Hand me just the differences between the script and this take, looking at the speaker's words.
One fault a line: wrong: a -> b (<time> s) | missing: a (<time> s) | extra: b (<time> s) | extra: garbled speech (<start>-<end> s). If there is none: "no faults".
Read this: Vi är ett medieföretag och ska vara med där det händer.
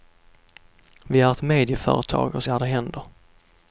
missing: ska vara med (2.4 s)